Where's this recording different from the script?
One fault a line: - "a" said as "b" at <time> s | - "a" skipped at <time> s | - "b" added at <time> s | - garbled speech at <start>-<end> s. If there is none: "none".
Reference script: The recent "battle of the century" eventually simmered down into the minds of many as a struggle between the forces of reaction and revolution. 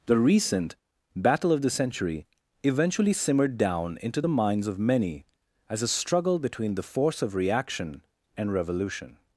- "forces" said as "force" at 6.8 s